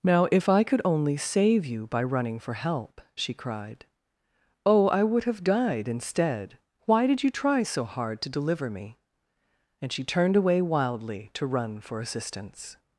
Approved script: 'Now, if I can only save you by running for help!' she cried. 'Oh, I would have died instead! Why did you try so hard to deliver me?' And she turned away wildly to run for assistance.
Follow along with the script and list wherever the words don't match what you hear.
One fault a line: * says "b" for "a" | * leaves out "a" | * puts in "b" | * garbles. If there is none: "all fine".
* says "could" for "can"